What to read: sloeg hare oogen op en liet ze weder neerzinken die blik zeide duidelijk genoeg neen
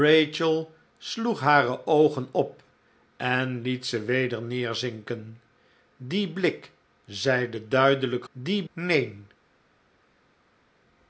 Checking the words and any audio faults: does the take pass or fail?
fail